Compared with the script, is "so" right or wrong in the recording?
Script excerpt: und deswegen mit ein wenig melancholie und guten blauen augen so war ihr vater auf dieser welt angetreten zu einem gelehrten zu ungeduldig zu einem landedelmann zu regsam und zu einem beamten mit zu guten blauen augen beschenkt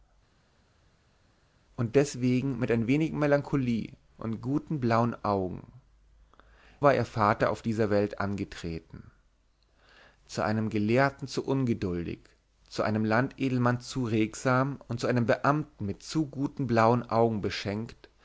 wrong